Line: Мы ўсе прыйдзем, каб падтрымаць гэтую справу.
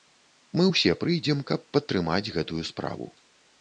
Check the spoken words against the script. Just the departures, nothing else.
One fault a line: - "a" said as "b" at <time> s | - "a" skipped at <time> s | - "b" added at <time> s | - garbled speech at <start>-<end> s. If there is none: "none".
none